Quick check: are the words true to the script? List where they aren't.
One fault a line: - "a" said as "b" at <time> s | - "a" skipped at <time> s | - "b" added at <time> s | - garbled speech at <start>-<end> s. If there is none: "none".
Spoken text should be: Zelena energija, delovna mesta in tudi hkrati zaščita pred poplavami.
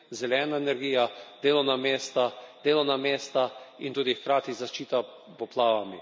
- "delovna mesta" added at 2.6 s
- "pred" skipped at 5.0 s